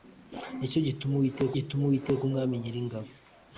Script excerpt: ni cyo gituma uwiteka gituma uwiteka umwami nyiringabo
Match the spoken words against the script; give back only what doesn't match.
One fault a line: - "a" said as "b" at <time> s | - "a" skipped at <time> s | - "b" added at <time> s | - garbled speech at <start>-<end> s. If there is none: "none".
none